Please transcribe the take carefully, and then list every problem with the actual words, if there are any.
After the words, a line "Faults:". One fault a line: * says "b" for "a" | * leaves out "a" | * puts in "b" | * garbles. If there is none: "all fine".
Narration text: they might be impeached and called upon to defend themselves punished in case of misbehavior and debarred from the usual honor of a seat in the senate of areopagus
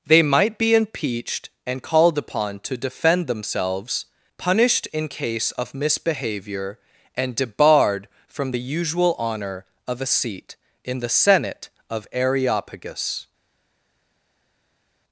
they might be impeached and called upon to defend themselves punished in case of misbehavior and debarred from the usual honor of a seat in the senate of areopagus
Faults:
all fine